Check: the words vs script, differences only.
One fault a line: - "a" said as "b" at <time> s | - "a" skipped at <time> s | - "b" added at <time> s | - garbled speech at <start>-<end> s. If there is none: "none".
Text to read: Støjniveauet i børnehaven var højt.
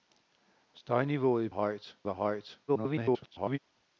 - "børnehaven" said as "højt" at 1.5 s
- garbled speech at 2.7-3.6 s